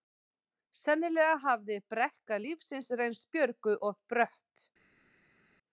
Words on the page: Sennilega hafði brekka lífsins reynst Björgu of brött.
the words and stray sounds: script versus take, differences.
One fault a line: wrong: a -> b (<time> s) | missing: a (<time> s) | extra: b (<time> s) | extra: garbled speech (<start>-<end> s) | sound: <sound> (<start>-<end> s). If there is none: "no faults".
no faults